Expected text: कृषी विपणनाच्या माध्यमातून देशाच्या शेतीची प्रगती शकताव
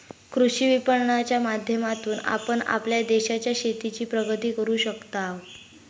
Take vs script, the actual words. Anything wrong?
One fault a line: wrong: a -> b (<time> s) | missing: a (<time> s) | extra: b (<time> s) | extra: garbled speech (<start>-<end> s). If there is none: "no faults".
extra: आपण आपल्या (2.2 s)
extra: करू (4.5 s)